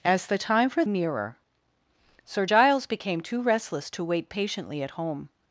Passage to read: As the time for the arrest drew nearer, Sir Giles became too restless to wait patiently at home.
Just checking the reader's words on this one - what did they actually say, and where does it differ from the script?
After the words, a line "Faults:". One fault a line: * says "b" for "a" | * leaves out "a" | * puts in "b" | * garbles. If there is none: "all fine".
As the time for nearer, Sir Giles became too restless to wait patiently at home.
Faults:
* leaves out "the arrest drew"